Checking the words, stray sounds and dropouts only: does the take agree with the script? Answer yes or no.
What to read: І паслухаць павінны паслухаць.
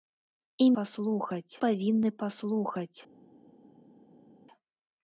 yes